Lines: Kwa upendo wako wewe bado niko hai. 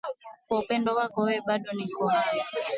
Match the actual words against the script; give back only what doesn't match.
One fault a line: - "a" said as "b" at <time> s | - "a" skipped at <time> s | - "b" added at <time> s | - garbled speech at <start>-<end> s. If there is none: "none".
none